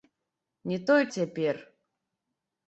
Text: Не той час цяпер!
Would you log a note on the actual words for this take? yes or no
yes